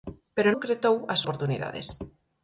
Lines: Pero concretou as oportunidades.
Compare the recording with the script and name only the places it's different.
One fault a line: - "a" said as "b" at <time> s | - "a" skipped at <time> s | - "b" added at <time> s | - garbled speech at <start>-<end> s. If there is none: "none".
none